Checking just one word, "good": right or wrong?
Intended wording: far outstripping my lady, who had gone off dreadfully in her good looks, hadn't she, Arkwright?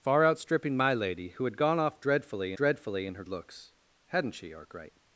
wrong